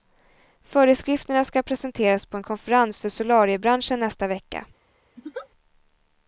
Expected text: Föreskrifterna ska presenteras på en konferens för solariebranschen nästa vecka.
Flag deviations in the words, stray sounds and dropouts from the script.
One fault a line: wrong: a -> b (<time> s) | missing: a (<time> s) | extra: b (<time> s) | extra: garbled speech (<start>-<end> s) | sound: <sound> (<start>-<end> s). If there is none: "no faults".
sound: laugh (5.2-5.5 s)